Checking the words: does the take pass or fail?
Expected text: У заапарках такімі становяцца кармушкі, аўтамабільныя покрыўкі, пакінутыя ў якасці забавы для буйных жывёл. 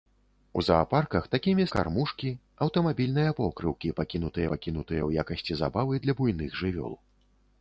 fail